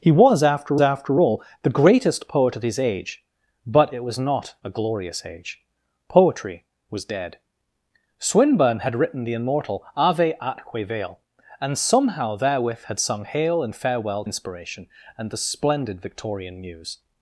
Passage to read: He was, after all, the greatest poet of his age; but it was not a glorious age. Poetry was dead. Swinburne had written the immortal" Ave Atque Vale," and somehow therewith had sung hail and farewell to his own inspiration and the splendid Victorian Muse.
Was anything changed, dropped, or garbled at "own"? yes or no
yes